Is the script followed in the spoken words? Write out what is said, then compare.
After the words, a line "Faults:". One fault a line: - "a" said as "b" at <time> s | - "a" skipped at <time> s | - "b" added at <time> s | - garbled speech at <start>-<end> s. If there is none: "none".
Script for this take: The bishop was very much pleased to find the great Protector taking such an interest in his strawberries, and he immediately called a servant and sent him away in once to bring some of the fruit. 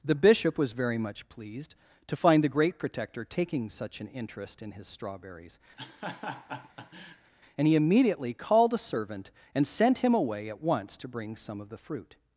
The bishop was very much pleased to find the great Protector taking such an interest in his strawberries, and he immediately called a servant and sent him away at once to bring some of the fruit.
Faults:
- "in" said as "at" at 10.5 s